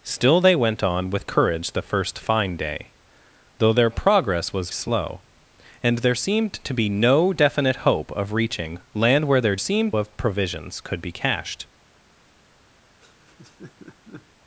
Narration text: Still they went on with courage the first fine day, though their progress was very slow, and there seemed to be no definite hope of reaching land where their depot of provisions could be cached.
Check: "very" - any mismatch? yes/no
yes